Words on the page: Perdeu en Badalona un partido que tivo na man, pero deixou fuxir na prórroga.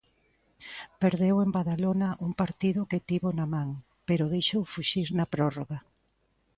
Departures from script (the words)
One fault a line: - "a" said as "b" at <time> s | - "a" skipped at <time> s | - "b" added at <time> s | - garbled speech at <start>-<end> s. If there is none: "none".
none